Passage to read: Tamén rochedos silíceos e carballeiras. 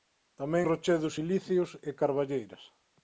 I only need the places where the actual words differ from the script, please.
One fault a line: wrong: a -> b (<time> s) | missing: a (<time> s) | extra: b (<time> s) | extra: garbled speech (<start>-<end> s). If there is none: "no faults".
no faults